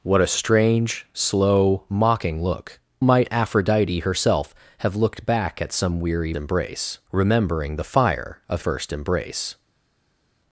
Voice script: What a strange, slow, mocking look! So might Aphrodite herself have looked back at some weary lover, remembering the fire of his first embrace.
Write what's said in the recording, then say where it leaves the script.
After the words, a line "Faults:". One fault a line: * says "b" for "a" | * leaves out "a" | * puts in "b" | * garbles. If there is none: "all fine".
What a strange, slow, mocking look! Might Aphrodite herself have looked back at some weary embrace, remembering the fire of first embrace.
Faults:
* leaves out "So"
* says "embrace" for "lover"
* leaves out "his"